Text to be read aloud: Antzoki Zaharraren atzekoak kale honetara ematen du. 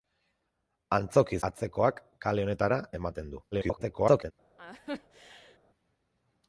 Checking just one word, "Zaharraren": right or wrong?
wrong